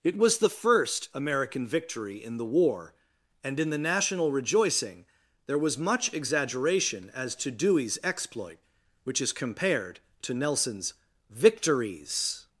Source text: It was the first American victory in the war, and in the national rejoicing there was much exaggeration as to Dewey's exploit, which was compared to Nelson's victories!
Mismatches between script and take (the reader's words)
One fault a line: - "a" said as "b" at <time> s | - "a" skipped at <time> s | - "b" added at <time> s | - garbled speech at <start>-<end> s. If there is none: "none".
- "was" said as "is" at 9.2 s